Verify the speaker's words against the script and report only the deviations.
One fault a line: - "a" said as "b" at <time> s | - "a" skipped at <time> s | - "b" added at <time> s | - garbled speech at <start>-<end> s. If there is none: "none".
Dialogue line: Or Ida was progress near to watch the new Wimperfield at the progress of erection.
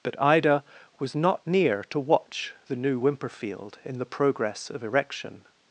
- "Or" said as "But" at 0.0 s
- "progress" said as "not" at 1.1 s
- "at" said as "in" at 3.8 s